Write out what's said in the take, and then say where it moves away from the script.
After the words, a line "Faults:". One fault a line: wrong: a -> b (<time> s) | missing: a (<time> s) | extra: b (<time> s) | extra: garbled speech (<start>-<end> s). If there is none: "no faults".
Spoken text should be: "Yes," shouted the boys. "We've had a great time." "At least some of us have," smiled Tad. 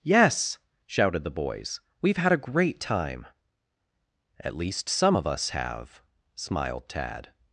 "Yes," shouted the boys. "We've had a great time." "At least some of us have," smiled Tad.
Faults:
no faults